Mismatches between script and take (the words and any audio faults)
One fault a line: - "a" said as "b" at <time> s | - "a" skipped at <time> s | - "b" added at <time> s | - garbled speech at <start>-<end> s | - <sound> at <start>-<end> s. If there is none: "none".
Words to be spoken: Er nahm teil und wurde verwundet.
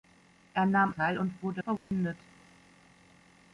- dropout at 1.8-1.9 s